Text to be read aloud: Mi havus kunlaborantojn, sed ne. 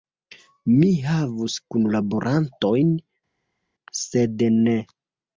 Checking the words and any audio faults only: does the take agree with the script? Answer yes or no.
yes